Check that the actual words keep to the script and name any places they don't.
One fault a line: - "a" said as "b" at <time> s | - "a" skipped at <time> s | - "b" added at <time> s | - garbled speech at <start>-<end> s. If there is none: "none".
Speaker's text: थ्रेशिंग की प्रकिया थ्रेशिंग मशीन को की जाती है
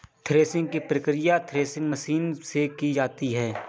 - "को" said as "से" at 2.4 s